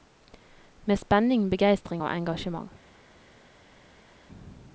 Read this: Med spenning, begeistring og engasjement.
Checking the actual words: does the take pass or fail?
pass